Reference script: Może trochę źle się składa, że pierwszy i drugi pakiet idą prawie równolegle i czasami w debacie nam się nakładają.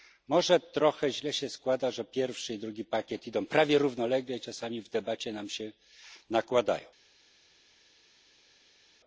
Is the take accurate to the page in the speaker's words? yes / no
yes